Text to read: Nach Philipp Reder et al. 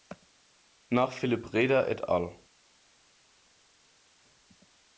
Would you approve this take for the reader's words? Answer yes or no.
yes